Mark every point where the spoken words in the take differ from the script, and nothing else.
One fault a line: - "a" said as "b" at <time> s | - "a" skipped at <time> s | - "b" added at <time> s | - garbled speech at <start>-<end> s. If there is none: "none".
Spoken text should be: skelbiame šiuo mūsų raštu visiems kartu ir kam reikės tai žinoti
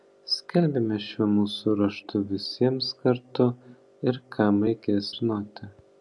- "tai" skipped at 5.1 s